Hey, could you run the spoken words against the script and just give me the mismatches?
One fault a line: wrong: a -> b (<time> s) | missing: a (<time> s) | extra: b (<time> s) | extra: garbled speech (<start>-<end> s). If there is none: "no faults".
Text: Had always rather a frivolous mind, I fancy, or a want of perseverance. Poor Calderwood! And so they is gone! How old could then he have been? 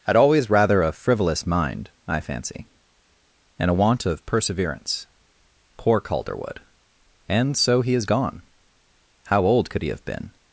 wrong: or -> and (3.6 s)
wrong: they -> he (7.8 s)
missing: then (9.8 s)